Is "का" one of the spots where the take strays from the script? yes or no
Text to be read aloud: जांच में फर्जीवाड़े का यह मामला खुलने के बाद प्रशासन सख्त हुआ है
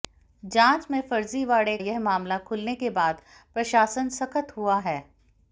yes